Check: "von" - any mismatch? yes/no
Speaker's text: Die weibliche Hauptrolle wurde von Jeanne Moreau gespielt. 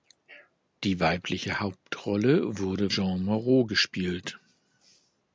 yes